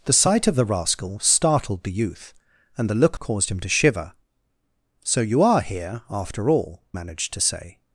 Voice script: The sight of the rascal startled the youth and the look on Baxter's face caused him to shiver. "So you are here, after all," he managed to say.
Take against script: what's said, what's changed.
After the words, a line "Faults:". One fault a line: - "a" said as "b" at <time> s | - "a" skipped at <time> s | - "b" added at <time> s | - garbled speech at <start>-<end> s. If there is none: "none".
The sight of the rascal startled the youth and the look caused him to shiver. "So you are here, after all," managed to say.
Faults:
- "on Baxter's face" skipped at 3.2 s
- "he" skipped at 6.8 s